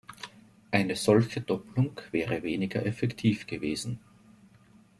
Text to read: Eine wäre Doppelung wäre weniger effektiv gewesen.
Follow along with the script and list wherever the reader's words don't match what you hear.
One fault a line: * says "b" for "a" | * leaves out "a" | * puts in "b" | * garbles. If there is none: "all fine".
* says "solche" for "wäre"